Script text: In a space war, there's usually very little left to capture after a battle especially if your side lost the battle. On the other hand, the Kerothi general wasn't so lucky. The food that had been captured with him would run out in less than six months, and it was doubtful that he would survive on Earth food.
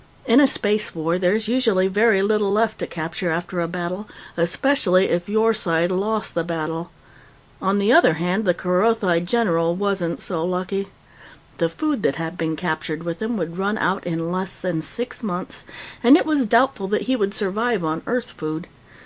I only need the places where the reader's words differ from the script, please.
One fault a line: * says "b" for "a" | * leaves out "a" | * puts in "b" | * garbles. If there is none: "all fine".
all fine